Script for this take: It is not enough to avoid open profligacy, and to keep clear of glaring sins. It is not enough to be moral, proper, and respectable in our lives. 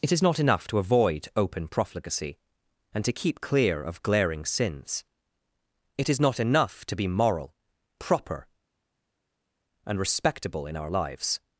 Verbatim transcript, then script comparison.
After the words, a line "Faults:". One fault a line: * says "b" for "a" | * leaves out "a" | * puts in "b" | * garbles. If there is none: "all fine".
It is not enough to avoid open profligacy, and to keep clear of glaring sins. It is not enough to be moral, proper, and respectable in our lives.
Faults:
all fine